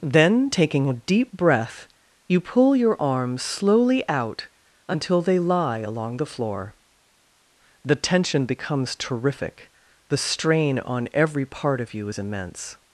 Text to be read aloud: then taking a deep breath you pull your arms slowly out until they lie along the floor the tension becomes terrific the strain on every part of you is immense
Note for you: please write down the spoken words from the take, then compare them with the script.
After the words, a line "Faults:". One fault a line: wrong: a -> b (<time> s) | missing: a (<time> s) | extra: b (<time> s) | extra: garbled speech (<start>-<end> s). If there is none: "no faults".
then taking a deep breath you pull your arms slowly out until they lie along the floor the tension becomes terrific the strain on every part of you is immense
Faults:
no faults